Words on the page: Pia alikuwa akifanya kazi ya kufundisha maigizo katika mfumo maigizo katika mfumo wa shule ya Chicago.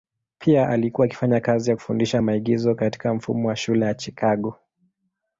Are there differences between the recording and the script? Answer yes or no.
yes